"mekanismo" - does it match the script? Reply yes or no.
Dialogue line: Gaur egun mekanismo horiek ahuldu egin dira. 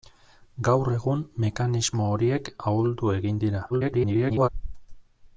yes